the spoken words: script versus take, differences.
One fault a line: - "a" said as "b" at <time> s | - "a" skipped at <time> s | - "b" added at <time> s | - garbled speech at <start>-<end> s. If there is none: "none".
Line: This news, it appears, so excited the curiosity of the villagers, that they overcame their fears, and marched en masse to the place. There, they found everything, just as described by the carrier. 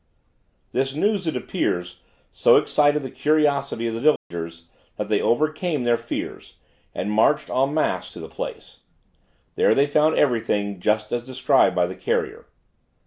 none